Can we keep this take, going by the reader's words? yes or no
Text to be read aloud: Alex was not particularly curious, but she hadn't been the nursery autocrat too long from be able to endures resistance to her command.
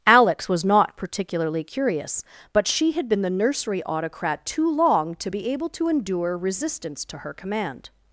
no